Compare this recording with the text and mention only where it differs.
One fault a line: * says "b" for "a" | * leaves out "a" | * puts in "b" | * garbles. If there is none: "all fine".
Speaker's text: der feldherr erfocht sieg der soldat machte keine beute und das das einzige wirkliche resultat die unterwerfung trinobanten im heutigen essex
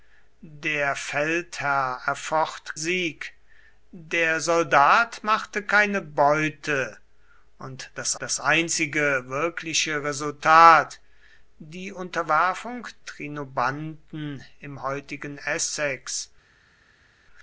all fine